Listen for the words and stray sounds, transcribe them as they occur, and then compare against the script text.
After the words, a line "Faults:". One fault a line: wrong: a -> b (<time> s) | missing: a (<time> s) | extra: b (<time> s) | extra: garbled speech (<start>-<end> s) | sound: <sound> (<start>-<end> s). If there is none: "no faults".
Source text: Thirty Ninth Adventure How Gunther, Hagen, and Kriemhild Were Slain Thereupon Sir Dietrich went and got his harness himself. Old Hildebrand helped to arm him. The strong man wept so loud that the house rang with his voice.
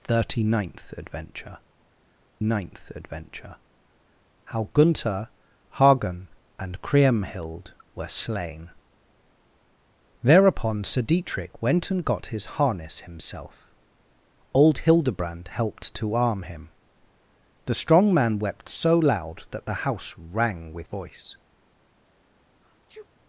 Thirty Ninth Adventure Ninth Adventure How Gunther, Hagen, and Kriemhild Were Slain Thereupon Sir Dietrich went and got his harness himself. Old Hildebrand helped to arm him. The strong man wept so loud that the house rang with voice.
Faults:
extra: Ninth Adventure (2.4 s)
missing: his (20.9 s)
sound: sneeze (22.6-23.1 s)